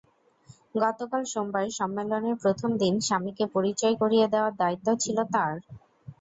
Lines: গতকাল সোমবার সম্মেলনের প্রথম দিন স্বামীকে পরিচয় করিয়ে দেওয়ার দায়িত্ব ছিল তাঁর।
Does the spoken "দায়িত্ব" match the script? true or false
true